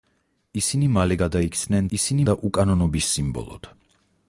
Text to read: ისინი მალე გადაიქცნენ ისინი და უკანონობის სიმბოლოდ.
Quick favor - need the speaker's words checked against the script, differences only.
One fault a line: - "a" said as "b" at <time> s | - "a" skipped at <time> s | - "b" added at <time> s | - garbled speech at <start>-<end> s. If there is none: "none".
none